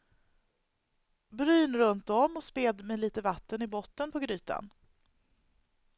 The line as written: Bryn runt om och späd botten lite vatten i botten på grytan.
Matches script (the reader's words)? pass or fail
fail